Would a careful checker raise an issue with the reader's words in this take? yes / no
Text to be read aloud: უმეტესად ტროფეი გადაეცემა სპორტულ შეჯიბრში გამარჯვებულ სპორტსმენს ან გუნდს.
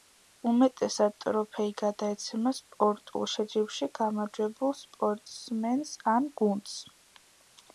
no